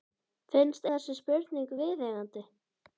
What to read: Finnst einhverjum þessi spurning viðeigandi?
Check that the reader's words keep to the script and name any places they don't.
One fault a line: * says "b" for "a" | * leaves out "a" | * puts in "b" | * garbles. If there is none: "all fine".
* leaves out "einhverjum"